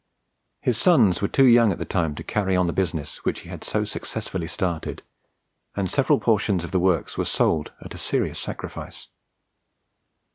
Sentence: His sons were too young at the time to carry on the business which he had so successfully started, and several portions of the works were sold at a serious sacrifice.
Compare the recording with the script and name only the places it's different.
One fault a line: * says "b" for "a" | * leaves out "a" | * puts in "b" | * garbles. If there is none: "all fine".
all fine